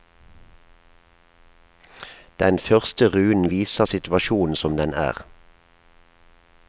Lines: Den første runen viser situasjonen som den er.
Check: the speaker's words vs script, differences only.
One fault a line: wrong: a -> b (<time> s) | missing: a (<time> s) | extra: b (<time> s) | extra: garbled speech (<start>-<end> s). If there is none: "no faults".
no faults